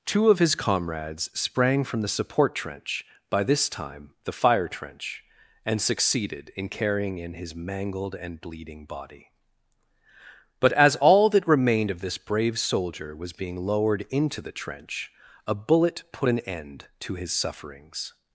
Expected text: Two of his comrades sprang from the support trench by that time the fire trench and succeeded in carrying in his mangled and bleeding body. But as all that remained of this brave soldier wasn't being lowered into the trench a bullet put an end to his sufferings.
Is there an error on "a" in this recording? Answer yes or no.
no